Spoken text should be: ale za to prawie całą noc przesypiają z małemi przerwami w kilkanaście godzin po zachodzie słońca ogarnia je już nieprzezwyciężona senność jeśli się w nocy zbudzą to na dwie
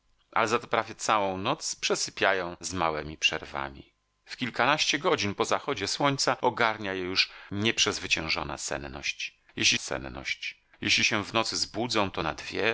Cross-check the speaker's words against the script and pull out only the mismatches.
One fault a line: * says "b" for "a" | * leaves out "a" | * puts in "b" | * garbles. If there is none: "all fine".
* puts in "senność jeśli"